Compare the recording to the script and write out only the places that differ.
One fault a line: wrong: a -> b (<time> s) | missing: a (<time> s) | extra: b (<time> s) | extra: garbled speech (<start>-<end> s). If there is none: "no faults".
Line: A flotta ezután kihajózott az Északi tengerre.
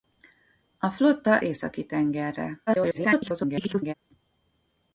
missing: ezután kihajózott az (1.4 s)
extra: garbled speech (2.7-3.9 s)